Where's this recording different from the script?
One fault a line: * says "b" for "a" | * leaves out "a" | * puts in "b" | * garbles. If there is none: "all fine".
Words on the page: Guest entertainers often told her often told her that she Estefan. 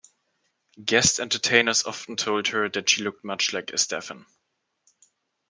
* says "that she looked much like" for "often told her that she"